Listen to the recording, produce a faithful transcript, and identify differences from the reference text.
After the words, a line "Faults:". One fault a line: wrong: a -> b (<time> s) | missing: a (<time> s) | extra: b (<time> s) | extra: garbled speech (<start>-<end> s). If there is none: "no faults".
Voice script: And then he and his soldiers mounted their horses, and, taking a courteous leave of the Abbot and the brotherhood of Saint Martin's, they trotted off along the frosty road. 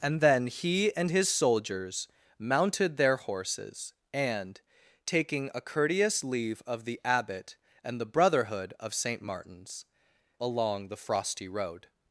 And then he and his soldiers mounted their horses, and, taking a courteous leave of the Abbot and the brotherhood of Saint Martin's, along the frosty road.
Faults:
missing: they trotted off (9.8 s)